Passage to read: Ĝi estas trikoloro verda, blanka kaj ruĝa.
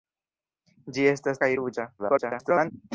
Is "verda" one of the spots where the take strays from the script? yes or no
yes